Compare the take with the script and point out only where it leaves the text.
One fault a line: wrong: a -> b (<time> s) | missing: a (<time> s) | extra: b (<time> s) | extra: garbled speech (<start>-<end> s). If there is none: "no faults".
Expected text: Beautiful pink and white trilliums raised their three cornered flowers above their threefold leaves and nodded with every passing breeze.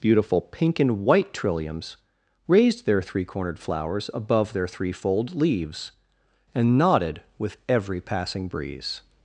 no faults